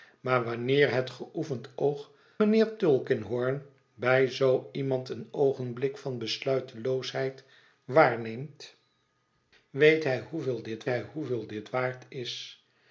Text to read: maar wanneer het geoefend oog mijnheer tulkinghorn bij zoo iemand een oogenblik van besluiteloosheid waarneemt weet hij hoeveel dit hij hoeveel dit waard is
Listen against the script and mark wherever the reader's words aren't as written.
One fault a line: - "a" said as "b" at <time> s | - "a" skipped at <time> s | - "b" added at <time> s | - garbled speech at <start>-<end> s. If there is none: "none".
none